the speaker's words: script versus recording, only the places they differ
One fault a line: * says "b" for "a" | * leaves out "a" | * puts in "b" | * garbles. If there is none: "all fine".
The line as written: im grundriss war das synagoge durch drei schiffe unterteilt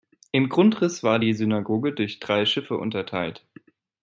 * says "die" for "das"